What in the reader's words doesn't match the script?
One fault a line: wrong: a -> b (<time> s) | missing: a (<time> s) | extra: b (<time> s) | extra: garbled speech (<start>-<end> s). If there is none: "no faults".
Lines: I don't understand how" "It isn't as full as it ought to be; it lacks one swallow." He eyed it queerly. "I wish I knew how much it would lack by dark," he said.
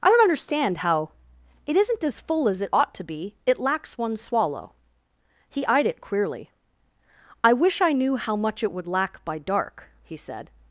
no faults